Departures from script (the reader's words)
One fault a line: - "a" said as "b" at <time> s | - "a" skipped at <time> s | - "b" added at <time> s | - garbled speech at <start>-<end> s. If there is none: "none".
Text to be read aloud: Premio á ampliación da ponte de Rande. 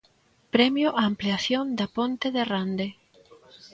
none